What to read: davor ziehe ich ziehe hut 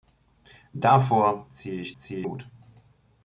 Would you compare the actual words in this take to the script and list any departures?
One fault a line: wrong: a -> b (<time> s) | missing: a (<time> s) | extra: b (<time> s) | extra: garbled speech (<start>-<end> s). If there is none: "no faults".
no faults